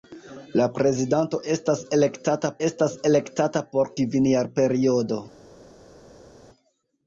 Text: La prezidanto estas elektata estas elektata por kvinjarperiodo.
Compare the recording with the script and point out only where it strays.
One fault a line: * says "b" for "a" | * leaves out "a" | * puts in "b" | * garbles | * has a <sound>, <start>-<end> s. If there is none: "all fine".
all fine